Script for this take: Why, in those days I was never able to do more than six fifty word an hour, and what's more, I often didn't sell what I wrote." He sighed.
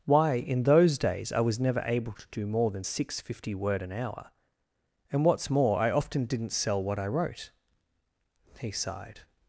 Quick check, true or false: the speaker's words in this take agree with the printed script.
true